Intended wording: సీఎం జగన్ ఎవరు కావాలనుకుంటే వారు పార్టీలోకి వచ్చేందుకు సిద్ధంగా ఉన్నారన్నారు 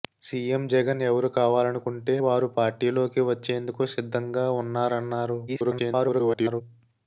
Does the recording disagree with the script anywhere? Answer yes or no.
yes